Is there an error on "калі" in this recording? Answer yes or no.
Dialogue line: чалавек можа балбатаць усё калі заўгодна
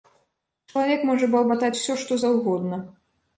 yes